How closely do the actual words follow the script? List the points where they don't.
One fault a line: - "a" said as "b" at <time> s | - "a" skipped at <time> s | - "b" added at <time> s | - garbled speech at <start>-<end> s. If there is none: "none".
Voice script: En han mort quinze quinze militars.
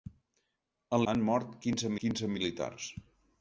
none